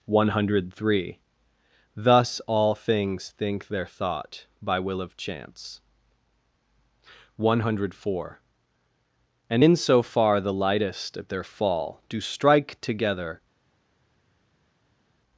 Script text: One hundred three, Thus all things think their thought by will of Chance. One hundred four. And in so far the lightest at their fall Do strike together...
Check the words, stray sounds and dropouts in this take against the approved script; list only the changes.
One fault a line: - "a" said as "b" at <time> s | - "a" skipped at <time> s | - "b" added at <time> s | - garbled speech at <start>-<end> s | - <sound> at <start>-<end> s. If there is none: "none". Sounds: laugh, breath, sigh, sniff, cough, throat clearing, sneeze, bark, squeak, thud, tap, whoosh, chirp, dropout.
none